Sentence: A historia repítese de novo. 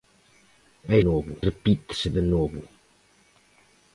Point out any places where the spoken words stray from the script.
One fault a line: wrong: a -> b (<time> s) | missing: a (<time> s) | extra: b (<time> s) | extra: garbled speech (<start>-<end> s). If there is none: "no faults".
wrong: historia -> novo (1.1 s)